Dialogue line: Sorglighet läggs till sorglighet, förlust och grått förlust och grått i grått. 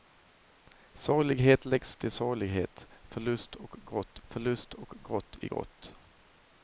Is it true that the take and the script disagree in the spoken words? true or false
false